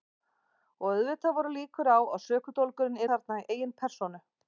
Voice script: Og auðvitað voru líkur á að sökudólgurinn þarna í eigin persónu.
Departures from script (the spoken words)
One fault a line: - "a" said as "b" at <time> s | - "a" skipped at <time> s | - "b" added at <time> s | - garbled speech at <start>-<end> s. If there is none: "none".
none